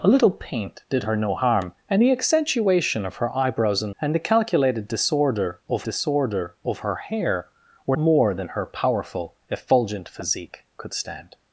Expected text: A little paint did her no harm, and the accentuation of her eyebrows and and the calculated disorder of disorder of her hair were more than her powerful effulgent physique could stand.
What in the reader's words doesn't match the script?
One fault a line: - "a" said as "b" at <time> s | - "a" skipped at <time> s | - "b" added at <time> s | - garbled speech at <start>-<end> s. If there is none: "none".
none